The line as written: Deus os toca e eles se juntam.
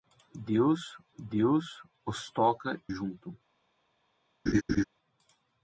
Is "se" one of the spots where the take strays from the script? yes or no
yes